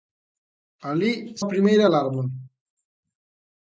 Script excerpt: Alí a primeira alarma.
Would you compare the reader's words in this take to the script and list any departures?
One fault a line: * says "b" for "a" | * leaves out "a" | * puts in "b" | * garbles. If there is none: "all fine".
all fine